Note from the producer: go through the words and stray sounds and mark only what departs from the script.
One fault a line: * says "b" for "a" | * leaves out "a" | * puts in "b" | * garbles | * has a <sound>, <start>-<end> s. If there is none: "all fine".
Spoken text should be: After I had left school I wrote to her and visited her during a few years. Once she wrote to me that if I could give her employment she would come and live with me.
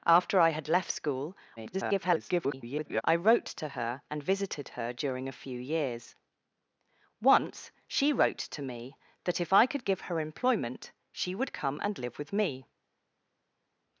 * garbles